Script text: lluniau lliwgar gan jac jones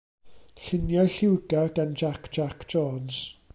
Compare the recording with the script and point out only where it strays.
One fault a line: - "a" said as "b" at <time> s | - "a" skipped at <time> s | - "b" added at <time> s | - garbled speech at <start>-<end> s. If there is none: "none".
- "jac" added at 2.4 s